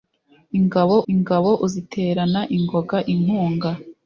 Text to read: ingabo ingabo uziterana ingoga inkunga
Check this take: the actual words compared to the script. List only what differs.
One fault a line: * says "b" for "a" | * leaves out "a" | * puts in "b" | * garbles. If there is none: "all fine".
all fine